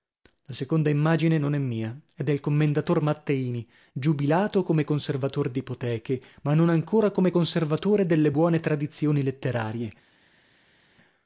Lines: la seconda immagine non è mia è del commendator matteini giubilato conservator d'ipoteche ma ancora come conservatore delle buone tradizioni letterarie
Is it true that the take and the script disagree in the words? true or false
true